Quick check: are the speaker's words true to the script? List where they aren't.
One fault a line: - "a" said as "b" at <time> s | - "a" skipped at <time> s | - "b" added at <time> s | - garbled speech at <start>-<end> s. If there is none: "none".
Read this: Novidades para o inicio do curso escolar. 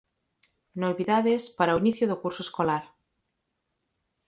none